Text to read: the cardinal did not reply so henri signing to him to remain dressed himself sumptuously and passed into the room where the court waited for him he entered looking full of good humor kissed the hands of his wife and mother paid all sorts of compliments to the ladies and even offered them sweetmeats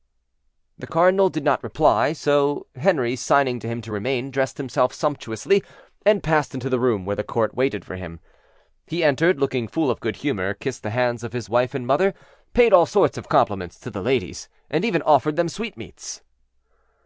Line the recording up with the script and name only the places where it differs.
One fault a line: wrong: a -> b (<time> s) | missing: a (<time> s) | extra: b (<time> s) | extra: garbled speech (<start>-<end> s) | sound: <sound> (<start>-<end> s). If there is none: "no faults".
no faults